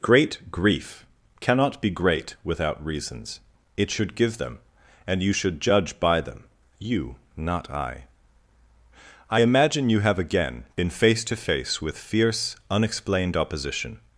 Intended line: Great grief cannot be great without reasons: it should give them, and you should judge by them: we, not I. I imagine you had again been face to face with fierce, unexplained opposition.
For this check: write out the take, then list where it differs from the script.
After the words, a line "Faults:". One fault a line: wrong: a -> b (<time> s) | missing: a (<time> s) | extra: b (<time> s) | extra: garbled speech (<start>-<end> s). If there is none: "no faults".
Great grief cannot be great without reasons: it should give them, and you should judge by them: you, not I. I imagine you have again been face to face with fierce, unexplained opposition.
Faults:
wrong: we -> you (6.8 s)
wrong: had -> have (10.0 s)